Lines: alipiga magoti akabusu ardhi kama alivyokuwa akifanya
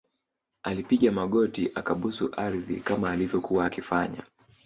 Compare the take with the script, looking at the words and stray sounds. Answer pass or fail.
pass